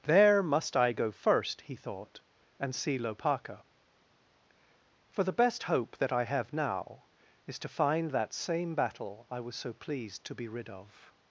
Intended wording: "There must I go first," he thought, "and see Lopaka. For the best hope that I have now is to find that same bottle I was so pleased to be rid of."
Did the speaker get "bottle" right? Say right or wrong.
wrong